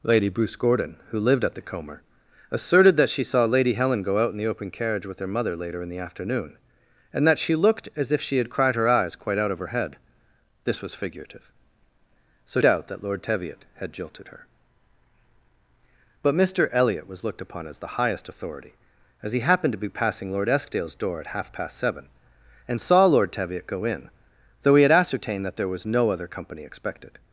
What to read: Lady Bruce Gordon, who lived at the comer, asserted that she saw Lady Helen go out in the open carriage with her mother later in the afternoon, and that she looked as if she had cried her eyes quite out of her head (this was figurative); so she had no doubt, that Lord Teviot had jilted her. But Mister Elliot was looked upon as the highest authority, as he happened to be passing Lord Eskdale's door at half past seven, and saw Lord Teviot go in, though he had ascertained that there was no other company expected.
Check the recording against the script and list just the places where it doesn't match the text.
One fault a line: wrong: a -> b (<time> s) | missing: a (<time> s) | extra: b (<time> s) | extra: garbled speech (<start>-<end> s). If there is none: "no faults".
missing: she had no (12.6 s)